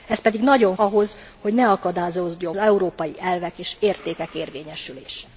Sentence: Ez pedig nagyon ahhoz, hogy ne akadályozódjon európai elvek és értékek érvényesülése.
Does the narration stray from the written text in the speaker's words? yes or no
no